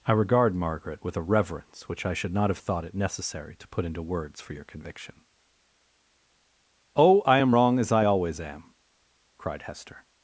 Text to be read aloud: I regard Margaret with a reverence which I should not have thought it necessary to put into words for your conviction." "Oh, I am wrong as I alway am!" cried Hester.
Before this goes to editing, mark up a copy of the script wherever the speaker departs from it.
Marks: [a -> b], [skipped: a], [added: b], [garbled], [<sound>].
I regard Margaret with a reverence which I should not have thought it necessary to put into words for your conviction." "Oh, I am wrong as I [alway -> always] am!" cried Hester.